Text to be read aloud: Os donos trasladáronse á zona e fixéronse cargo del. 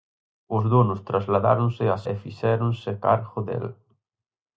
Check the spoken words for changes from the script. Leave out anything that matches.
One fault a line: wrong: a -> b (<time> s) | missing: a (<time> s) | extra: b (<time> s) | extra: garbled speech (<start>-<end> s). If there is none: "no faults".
missing: zona (2.0 s)